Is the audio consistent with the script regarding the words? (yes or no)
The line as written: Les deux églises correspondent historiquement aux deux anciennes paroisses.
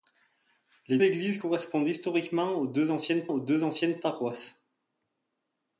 no